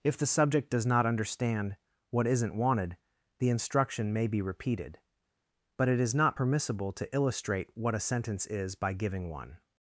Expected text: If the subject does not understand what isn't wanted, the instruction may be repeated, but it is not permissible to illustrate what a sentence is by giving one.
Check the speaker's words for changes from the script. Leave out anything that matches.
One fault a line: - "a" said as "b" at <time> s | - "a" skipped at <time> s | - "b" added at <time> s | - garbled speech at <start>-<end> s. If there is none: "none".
none